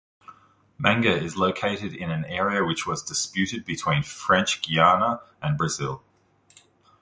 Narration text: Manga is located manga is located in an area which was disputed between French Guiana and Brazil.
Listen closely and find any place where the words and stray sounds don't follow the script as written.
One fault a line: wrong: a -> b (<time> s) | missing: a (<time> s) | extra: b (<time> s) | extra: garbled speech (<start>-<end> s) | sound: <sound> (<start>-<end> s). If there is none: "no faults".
missing: manga is located (1.9 s)